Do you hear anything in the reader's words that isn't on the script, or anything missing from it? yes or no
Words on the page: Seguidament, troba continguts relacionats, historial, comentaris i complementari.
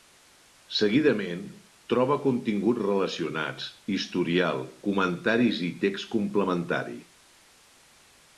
yes